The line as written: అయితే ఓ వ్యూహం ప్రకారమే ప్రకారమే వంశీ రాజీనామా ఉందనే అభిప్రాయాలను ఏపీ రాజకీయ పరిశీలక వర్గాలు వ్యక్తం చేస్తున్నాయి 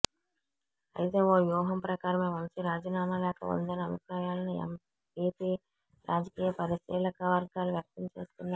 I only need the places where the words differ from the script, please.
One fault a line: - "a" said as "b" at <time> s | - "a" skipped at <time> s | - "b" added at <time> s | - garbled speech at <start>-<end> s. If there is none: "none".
- "ప్రకారమే" skipped at 2.3 s
- "లేఖ" added at 3.2 s